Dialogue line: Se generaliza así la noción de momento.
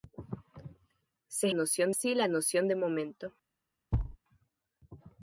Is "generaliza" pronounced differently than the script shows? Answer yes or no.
yes